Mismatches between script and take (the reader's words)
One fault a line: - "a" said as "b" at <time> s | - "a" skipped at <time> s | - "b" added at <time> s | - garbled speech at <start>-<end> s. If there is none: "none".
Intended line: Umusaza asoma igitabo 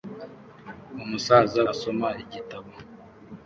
none